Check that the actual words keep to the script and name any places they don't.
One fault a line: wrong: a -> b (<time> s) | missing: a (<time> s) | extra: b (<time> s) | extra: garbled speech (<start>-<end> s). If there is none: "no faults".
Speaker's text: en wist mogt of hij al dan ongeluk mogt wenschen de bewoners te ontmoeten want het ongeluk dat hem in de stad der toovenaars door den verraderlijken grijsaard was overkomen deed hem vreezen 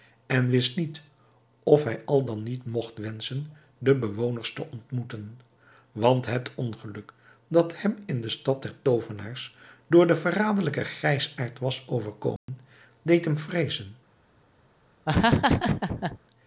wrong: mogt -> niet (0.8 s)
wrong: ongeluk -> niet (2.4 s)